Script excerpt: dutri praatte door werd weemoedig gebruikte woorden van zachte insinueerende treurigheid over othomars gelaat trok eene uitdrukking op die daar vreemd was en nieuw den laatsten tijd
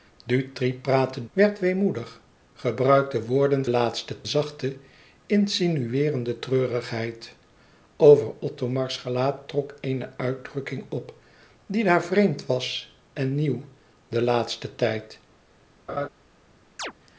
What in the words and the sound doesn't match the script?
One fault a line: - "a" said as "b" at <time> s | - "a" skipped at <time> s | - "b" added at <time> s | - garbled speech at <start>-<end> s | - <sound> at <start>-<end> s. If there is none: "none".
- "door" skipped at 1.2 s
- "van" said as "laatsten" at 3.7 s
- laugh at 15.9-16.1 s
- chirp at 16.8-16.9 s